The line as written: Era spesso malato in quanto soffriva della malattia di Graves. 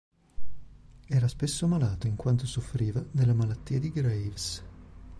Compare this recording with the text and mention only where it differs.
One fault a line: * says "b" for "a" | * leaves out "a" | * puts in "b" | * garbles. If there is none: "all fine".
all fine